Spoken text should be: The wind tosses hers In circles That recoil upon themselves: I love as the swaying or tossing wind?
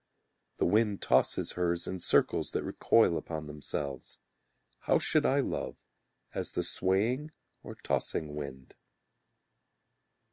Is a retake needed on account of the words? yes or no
yes